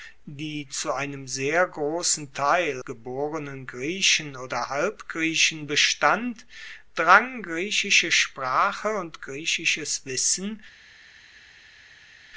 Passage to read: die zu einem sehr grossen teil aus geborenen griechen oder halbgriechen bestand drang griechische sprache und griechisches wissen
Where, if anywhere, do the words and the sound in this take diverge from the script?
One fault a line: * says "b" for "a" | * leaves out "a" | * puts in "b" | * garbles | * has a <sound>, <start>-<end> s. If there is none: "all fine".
* leaves out "aus"